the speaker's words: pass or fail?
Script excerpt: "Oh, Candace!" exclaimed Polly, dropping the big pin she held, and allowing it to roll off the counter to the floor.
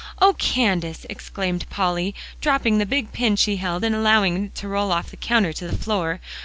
pass